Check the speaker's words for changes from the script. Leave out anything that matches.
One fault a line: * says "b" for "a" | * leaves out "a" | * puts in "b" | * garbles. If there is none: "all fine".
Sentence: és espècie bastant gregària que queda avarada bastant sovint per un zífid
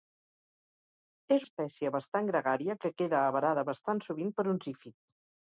all fine